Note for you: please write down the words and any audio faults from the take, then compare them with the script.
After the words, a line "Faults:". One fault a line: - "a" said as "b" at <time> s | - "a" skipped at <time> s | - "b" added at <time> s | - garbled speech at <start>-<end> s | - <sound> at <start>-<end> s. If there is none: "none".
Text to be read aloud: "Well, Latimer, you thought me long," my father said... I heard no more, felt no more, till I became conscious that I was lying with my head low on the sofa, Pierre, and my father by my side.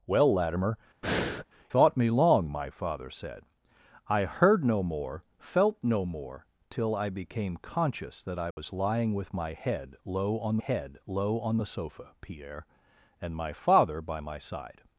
"Well, Latimer, thought me long," my father said... I heard no more, felt no more, till I became conscious that I was lying with my head low on head low on the sofa, Pierre, and my father by my side.
Faults:
- "you" skipped at 0.8 s
- breath at 1.0-1.4 s
- dropout at 8.5-8.6 s
- "head low on" added at 10.6 s